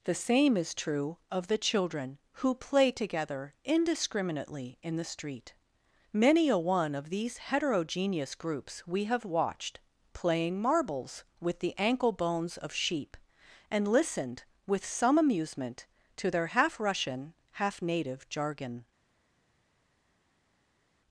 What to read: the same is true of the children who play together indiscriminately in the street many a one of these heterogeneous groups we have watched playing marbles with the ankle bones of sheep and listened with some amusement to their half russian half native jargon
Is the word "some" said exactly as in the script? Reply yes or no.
yes